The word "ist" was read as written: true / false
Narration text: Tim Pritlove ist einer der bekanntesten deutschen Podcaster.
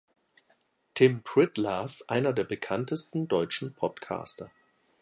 false